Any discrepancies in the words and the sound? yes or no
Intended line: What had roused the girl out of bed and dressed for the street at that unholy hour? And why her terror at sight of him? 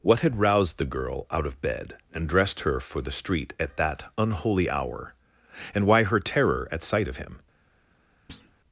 yes